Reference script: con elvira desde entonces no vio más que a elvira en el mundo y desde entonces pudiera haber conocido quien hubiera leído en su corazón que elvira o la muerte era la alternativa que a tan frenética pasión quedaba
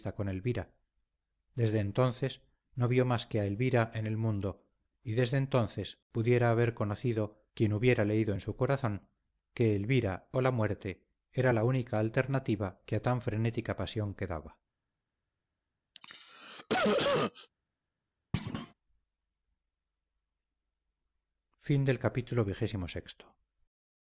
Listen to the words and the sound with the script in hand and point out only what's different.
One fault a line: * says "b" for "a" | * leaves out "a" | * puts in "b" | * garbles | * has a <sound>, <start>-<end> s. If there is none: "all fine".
* puts in "única"
* has a cough, 15.9-17.5 s
* has a thud, 18.3-18.7 s